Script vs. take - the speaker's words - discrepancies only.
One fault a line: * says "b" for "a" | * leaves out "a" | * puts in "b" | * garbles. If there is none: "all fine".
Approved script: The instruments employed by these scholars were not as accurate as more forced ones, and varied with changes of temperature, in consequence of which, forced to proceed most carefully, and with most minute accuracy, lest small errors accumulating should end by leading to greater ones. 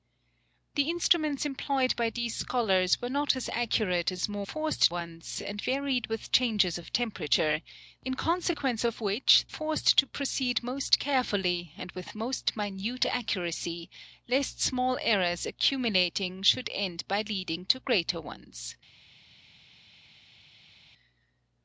all fine